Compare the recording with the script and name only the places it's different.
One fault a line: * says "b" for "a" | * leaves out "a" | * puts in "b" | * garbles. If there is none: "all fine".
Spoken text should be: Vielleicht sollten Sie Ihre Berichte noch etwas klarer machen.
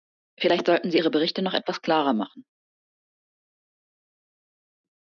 all fine